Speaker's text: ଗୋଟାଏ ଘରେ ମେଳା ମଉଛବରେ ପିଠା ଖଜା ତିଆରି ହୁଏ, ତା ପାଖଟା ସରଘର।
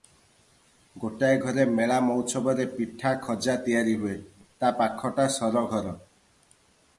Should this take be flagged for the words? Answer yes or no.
no